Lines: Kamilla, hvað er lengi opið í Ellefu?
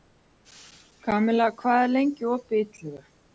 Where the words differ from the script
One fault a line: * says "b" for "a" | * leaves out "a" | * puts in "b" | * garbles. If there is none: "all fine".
all fine